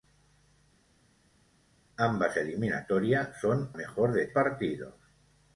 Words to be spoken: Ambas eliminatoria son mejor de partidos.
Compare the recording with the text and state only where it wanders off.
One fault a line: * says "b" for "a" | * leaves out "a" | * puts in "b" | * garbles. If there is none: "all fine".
all fine